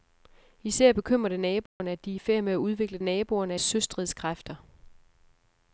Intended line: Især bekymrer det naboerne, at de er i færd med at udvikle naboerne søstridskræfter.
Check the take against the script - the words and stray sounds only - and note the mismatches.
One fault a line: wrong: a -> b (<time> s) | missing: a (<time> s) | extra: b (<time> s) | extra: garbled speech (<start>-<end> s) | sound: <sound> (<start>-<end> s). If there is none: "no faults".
sound: dropout (1.7-1.8 s)